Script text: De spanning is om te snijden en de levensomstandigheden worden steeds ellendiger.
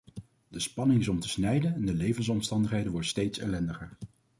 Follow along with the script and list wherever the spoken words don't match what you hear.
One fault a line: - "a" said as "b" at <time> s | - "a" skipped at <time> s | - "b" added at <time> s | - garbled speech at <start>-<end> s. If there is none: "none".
none